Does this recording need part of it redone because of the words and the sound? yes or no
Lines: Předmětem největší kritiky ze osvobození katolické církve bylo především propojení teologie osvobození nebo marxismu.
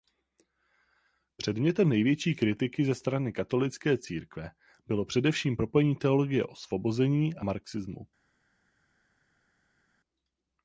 yes